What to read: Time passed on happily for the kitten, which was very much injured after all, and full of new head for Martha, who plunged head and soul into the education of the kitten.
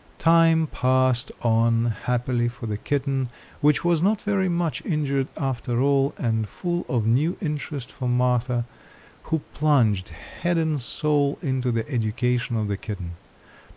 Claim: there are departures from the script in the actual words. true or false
true